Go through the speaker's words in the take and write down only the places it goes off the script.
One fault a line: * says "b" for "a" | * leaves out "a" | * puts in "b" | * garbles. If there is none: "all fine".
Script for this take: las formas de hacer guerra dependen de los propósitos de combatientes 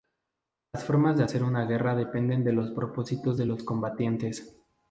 * puts in "una"
* puts in "los"